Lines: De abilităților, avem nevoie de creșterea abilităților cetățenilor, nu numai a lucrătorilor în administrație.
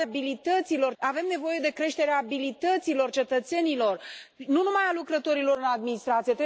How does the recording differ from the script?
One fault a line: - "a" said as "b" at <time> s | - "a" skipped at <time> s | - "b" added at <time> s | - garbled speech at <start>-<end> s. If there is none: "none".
none